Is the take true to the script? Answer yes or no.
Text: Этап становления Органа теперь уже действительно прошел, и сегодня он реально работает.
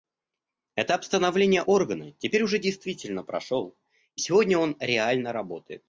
yes